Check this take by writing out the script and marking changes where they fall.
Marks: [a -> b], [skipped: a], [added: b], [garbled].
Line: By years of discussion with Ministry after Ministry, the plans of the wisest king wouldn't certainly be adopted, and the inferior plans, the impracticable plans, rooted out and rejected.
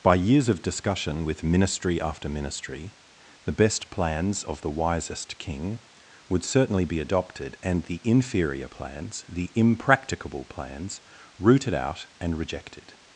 By years of discussion with Ministry after Ministry, the [added: best] plans of the wisest king [wouldn't -> would] certainly be adopted, and the inferior plans, the impracticable plans, rooted out and rejected.